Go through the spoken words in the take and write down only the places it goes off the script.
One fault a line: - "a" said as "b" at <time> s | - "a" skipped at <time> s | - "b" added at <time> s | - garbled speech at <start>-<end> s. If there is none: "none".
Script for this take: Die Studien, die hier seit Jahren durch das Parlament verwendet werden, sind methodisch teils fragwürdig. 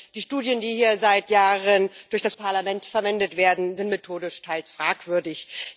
none